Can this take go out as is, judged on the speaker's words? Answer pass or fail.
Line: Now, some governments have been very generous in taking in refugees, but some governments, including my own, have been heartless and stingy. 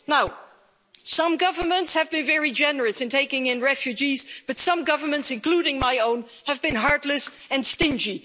pass